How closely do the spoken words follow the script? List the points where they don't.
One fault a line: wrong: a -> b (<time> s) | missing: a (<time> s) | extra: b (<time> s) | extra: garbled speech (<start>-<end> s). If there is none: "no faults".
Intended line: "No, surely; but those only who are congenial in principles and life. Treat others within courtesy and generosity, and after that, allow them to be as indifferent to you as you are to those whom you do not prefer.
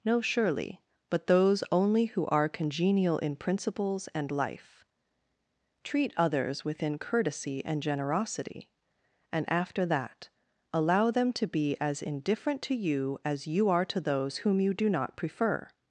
no faults